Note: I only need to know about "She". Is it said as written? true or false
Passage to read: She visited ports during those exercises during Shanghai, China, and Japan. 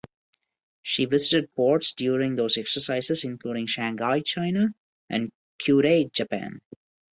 true